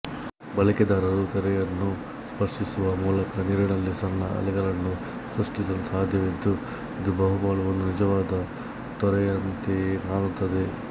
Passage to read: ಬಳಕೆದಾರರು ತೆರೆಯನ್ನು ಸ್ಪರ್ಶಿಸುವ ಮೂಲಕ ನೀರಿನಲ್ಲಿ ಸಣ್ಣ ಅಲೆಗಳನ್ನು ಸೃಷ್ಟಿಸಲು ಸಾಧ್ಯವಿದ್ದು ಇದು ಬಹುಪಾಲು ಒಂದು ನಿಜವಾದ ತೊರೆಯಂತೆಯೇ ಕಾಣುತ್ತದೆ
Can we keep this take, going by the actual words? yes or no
yes